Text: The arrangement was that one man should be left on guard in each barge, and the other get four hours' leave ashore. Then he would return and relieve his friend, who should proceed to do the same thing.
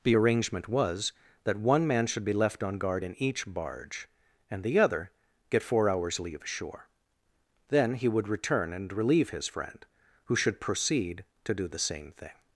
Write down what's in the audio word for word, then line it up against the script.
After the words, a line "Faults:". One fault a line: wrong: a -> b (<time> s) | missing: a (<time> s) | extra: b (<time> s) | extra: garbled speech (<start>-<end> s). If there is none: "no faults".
The arrangement was that one man should be left on guard in each barge, and the other get four hours' leave ashore. Then he would return and relieve his friend, who should proceed to do the same thing.
Faults:
no faults